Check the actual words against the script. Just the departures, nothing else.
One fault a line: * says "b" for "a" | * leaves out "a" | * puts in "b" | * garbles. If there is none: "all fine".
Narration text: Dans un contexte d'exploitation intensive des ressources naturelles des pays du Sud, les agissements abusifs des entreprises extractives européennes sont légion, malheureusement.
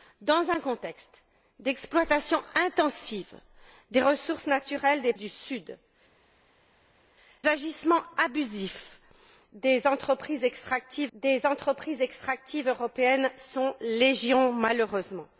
* leaves out "pays"
* leaves out "les"
* puts in "des entreprises extractives"